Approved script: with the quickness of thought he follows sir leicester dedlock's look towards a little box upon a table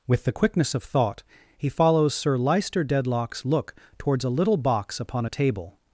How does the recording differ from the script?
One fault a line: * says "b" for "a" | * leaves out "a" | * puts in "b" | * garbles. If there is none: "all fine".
all fine